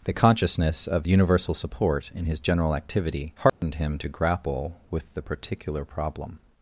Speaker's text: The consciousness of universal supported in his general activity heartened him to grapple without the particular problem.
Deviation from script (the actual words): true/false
true